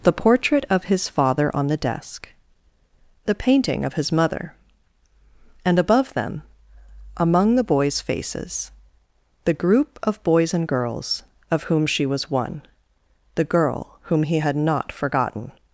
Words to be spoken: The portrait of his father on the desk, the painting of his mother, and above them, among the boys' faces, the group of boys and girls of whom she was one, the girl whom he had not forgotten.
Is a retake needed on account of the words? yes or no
no